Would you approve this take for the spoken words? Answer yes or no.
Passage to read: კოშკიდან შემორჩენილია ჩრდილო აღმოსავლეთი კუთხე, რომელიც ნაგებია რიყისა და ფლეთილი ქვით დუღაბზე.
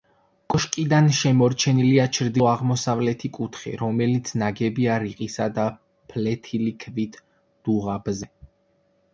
yes